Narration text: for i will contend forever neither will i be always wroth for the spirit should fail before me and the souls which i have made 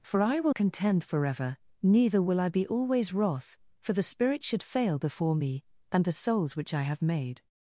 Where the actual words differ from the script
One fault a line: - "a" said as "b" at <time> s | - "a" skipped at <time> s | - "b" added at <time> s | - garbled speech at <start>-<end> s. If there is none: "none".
none